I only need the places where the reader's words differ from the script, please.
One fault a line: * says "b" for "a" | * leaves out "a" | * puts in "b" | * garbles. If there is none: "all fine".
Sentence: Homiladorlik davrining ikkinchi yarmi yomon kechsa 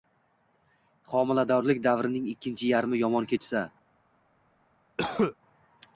all fine